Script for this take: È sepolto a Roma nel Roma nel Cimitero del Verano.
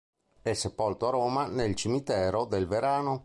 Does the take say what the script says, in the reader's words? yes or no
no